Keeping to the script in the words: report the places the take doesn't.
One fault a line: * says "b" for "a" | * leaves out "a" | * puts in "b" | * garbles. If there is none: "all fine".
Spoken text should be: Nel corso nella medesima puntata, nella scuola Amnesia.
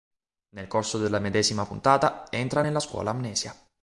* says "della" for "nella"
* puts in "entra"